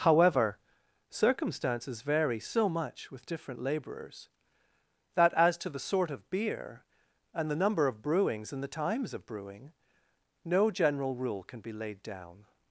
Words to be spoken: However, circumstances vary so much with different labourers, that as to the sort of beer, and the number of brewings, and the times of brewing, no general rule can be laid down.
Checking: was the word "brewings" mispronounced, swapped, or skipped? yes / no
no